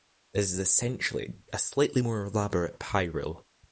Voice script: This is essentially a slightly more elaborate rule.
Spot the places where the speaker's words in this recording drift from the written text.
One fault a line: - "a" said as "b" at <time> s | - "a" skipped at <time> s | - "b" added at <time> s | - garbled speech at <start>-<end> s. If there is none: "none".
- "pie" added at 2.8 s